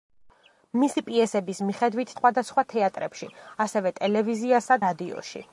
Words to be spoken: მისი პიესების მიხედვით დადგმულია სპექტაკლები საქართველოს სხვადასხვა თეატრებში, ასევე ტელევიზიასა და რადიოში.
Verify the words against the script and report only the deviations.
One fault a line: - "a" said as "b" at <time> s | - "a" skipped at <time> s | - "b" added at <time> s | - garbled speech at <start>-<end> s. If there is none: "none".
- "დადგმულია სპექტაკლები საქართველოს" skipped at 2.1 s
- "და" skipped at 4.8 s